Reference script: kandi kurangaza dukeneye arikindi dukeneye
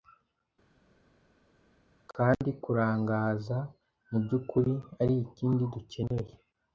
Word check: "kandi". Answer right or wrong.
right